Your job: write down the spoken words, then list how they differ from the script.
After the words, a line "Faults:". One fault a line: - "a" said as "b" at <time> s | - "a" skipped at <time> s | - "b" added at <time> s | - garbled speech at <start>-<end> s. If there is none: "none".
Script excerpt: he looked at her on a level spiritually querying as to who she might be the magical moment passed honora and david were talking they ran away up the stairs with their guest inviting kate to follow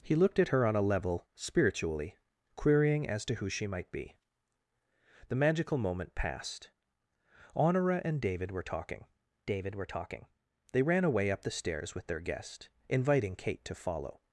he looked at her on a level spiritually querying as to who she might be the magical moment passed honora and david were talking david were talking they ran away up the stairs with their guest inviting kate to follow
Faults:
- "david were talking" added at 9.5 s